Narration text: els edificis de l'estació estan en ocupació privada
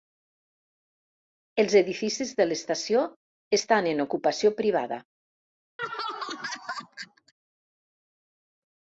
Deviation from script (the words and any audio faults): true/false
true